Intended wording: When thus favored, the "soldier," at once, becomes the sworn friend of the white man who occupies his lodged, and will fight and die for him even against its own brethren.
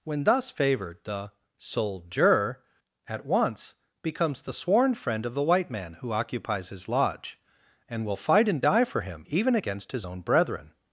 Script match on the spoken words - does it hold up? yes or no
no